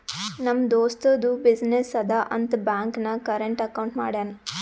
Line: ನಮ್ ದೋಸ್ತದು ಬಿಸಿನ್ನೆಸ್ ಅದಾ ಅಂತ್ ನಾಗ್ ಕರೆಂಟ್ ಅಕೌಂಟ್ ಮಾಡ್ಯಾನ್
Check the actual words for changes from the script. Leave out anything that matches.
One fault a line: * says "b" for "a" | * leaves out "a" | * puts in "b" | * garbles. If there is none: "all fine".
* puts in "ಬ್ಯಾಂಕ್"